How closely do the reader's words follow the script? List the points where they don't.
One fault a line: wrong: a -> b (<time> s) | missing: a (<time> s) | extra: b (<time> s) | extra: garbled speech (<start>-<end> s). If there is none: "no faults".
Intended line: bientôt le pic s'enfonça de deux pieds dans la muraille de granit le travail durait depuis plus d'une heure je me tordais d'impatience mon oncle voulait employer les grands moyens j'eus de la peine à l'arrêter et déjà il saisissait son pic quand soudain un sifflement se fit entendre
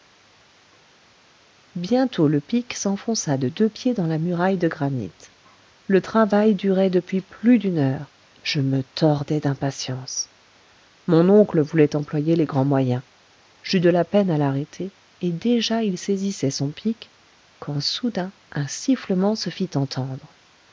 no faults